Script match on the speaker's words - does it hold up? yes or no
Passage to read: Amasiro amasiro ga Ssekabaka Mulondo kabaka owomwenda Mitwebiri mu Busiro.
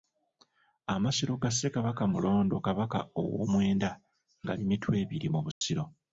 no